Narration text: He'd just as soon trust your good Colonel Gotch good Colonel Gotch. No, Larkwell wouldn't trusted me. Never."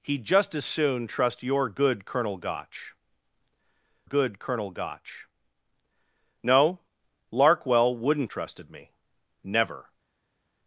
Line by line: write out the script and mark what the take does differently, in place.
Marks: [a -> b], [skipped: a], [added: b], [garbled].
He'd just as soon trust your good Colonel Gotch good Colonel Gotch. No, Larkwell wouldn't trusted me. Never."